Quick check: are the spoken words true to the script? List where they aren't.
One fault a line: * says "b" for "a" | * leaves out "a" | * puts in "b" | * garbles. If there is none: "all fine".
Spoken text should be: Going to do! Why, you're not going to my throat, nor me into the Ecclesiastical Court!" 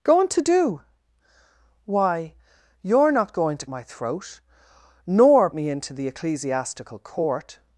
all fine